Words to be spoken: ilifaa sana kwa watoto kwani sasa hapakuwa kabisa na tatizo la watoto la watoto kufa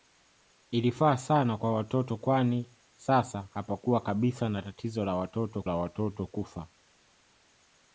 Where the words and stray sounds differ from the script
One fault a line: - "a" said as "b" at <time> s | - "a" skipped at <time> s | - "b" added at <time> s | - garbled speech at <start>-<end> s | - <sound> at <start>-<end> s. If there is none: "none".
none